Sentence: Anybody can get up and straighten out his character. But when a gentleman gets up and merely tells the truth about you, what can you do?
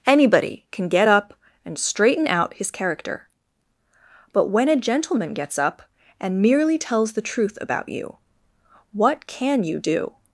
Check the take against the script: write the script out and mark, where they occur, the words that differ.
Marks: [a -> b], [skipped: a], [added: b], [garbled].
Anybody can get up and straighten out his character. But when a gentleman gets up and merely tells the truth about you, what can you do?